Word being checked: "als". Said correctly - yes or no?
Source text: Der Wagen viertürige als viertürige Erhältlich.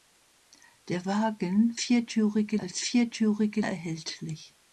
yes